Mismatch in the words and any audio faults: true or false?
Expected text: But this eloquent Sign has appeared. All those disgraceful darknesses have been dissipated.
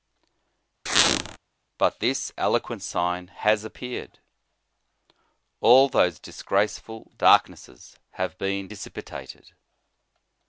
true